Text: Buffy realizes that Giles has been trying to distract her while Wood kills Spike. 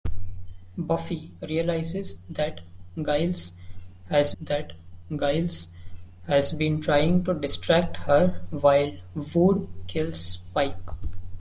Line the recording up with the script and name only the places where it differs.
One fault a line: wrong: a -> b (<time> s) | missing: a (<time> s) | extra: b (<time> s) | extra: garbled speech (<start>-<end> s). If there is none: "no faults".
extra: that Giles has (4.4 s)